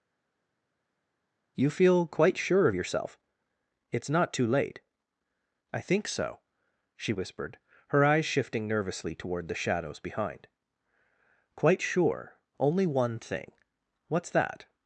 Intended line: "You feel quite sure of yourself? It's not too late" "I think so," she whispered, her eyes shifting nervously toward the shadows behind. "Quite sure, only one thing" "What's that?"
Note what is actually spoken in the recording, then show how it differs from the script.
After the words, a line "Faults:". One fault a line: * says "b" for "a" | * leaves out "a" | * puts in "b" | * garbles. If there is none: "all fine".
"You feel quite sure of yourself? It's not too late" "I think so," she whispered, her eyes shifting nervously toward the shadows behind. "Quite sure, only one thing" "What's that?"
Faults:
all fine